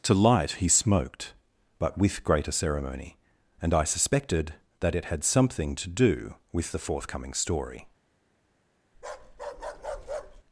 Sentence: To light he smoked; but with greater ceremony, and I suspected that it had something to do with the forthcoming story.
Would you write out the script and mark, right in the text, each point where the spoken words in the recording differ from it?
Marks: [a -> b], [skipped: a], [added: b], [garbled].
To light he smoked; but with greater ceremony, and I suspected that it had something to do with the forthcoming story.